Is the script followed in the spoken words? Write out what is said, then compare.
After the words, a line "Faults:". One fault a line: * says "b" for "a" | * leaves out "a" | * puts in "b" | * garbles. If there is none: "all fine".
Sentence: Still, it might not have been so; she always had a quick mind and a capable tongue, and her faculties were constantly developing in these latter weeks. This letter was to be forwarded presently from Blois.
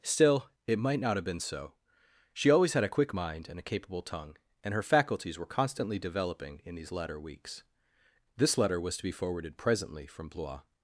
Still, it might not have been so; she always had a quick mind and a capable tongue, and her faculties were constantly developing in these latter weeks. This letter was to be forwarded presently from Blois.
Faults:
all fine